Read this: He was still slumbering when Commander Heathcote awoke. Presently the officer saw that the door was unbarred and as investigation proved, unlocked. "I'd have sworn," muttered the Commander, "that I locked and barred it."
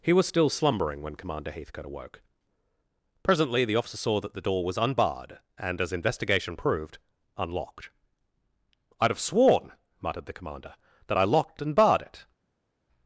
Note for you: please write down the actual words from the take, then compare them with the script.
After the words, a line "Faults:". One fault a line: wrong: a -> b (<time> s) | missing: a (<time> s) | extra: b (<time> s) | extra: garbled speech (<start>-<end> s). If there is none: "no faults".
He was still slumbering when Commander Heathcote awoke. Presently the officer saw that the door was unbarred and as investigation proved, unlocked. "I'd have sworn," muttered the Commander, "that I locked and barred it."
Faults:
no faults